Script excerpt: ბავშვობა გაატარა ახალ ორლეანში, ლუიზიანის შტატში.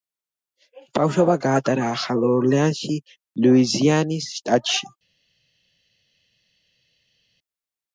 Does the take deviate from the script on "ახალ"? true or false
false